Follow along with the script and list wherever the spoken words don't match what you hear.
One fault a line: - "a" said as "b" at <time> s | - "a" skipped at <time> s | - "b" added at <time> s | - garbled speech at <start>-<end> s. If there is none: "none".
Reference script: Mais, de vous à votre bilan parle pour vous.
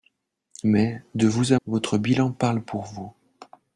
none